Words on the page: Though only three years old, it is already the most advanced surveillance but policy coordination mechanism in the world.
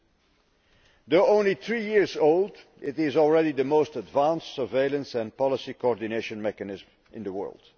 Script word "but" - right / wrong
wrong